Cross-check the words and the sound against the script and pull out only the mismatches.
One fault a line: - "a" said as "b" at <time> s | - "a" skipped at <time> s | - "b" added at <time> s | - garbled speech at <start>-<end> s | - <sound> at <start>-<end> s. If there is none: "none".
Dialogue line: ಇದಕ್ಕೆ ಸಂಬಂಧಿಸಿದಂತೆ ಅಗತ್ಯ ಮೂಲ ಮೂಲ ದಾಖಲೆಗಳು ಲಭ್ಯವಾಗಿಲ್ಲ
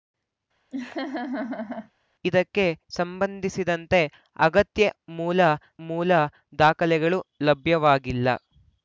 - laugh at 0.7-1.9 s